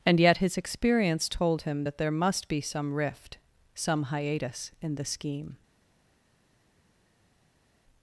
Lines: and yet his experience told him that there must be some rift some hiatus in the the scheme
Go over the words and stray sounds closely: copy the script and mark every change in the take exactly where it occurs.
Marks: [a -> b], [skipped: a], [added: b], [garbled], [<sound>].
and yet his experience told him that there must be some rift some hiatus in the [skipped: the] scheme